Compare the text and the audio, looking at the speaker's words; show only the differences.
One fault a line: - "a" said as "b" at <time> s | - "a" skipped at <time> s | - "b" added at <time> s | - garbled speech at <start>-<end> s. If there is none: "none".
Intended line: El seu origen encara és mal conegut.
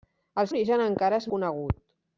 - "seu" skipped at 0.5 s
- "mal" skipped at 1.3 s